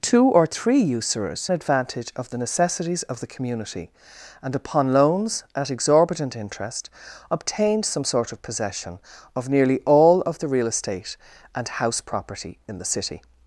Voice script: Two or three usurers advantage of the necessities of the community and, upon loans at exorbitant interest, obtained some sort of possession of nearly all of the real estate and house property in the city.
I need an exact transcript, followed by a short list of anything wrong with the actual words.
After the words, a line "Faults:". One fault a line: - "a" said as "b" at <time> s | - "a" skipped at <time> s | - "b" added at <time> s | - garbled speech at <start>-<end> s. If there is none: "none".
Two or three usurers advantage of the necessities of the community and, upon loans at exorbitant interest, obtained some sort of possession of nearly all of the real estate and house property in the city.
Faults:
none